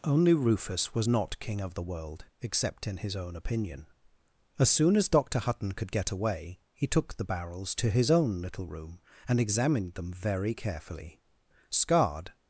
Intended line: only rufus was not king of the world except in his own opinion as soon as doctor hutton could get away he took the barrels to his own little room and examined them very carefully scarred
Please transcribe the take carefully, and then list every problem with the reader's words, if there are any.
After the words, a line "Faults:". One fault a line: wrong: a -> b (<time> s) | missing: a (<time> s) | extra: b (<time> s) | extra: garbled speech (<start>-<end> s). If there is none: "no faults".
only rufus was not king of the world except in his own opinion as soon as doctor hutton could get away he took the barrels to his own little room and examined them very carefully scarred
Faults:
no faults